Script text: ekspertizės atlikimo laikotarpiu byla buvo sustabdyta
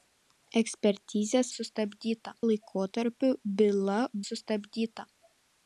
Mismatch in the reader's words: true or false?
true